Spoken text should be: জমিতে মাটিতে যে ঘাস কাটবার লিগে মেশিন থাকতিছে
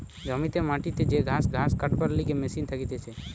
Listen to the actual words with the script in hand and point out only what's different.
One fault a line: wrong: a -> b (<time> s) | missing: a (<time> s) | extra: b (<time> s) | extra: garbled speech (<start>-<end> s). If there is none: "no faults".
extra: ঘাস (1.5 s)